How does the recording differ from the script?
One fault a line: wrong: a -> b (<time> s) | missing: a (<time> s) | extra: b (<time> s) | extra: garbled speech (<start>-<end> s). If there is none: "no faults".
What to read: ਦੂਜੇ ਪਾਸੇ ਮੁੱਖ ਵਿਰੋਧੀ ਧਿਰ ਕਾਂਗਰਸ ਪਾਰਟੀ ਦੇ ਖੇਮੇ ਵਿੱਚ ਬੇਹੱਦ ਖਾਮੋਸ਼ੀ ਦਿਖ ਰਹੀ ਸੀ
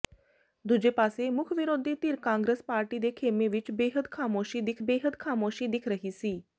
extra: ਬੇਹੱਦ ਖਾਮੋਸ਼ੀ ਦਿਖ (4.8 s)